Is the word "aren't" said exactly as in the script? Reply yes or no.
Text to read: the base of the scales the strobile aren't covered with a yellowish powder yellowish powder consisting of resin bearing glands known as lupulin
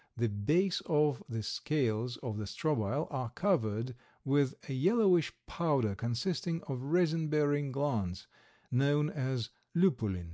no